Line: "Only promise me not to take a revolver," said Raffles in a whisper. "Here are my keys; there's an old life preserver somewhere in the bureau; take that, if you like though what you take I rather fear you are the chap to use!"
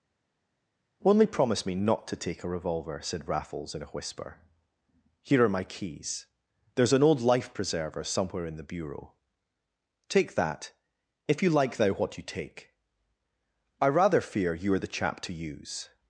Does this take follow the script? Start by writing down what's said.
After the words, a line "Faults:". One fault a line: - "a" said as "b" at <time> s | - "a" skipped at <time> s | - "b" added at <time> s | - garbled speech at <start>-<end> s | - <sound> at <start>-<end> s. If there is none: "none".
"Only promise me not to take a revolver," said Raffles in a whisper. "Here are my keys; there's an old life preserver somewhere in the bureau; take that, if you like thou what you take I rather fear you are the chap to use!"
Faults:
- "though" said as "thou" at 11.8 s